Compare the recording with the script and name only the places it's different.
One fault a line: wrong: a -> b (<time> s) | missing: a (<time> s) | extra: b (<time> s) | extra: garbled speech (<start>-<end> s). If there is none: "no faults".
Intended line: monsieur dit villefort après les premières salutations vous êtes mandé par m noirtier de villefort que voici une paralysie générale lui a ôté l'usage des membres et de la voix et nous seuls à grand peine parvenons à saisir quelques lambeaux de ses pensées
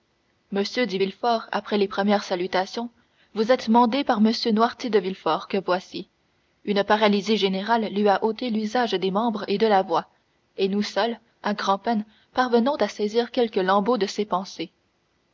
no faults